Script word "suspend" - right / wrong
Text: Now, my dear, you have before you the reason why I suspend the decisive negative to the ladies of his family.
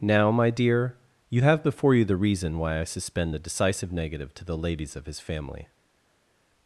right